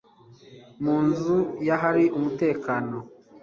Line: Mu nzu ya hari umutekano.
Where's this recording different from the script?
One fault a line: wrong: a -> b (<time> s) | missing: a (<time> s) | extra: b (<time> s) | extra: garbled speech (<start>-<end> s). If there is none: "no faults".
no faults